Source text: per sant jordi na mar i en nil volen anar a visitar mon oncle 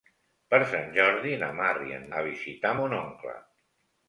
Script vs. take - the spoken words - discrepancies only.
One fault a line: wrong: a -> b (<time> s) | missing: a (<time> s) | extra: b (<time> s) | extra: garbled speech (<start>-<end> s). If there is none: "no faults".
missing: nil volen anar (2.1 s)